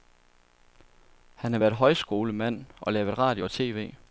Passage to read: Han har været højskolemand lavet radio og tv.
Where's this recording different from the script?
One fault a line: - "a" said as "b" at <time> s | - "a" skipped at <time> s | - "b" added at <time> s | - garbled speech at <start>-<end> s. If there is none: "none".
- "og" added at 2.8 s